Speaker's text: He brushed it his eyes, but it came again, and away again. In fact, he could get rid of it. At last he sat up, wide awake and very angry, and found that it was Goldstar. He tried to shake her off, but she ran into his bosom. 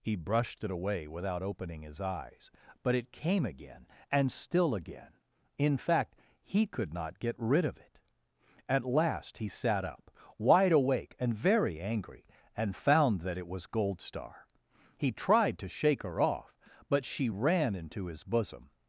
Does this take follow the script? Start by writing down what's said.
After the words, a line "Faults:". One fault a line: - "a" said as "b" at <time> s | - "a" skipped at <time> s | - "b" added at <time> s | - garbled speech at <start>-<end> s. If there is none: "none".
He brushed it away without opening his eyes, but it came again, and still again. In fact, he could not get rid of it. At last he sat up, wide awake and very angry, and found that it was Goldstar. He tried to shake her off, but she ran into his bosom.
Faults:
- "away without opening" added at 0.7 s
- "away" said as "still" at 4.3 s
- "not" added at 6.9 s